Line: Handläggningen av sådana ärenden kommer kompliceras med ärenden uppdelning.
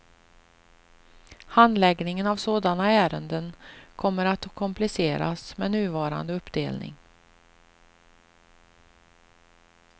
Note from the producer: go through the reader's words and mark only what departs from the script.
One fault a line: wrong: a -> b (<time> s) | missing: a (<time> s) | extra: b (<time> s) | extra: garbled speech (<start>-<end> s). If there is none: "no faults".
extra: att (4.2 s)
wrong: ärenden -> nuvarande (5.7 s)